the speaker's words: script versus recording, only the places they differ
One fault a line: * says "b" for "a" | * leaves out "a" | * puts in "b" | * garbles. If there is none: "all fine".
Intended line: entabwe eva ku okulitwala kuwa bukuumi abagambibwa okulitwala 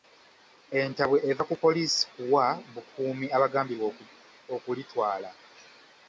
* says "poliisi" for "okulitwala"